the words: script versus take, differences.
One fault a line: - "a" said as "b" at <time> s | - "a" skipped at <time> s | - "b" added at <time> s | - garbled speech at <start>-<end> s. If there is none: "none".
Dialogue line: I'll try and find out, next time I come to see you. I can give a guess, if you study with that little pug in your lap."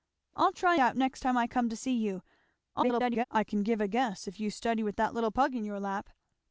- "and find" skipped at 0.8 s
- garbled speech at 2.7-3.2 s